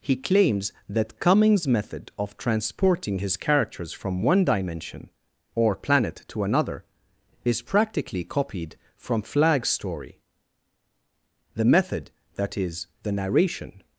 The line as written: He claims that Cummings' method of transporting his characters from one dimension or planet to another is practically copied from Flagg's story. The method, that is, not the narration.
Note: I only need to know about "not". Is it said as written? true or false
false